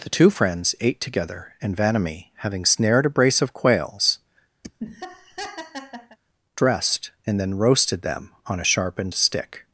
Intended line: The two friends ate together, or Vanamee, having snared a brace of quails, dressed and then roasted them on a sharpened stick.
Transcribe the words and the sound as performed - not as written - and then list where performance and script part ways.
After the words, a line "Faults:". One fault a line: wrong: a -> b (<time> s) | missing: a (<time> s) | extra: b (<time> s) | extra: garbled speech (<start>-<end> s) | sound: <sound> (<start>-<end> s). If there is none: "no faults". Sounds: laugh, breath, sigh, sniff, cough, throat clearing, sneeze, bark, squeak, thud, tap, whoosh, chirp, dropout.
The two friends ate together, and Vanamee, having snared a brace of quails, dressed and then roasted them on a sharpened stick.
Faults:
wrong: or -> and (1.6 s)
sound: laugh (4.6-6.2 s)